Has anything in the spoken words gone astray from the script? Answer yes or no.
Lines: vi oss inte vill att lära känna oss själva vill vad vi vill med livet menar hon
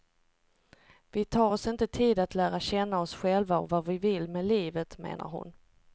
yes